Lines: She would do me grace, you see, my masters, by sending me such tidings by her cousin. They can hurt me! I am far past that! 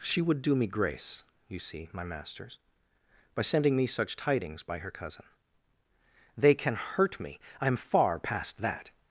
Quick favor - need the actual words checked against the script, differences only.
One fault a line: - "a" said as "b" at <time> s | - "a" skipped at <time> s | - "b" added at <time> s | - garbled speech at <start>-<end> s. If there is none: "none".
none